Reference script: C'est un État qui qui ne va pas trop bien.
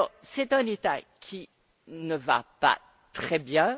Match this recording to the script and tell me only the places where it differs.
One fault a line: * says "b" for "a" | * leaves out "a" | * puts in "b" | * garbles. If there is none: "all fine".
* leaves out "qui"
* says "très" for "trop"